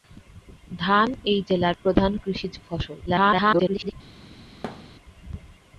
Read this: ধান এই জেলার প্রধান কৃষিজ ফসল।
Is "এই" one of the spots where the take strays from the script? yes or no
no